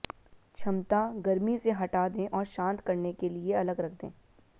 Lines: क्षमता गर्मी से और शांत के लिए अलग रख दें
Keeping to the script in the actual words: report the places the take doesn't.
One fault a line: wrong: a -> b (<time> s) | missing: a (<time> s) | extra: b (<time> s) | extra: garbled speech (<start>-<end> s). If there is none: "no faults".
extra: हटा दें (1.7 s)
extra: करने (2.8 s)